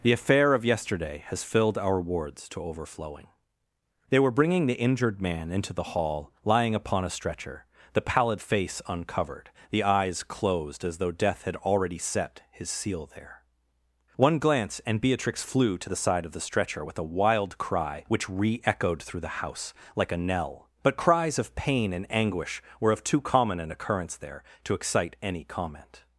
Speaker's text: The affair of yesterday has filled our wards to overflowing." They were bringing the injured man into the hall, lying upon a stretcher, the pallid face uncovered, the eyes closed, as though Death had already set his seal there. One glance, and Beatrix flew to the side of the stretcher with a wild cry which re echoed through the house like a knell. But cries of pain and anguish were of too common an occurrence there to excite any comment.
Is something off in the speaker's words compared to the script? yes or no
no